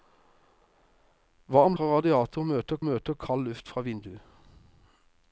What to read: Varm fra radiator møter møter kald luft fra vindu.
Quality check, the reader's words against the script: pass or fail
pass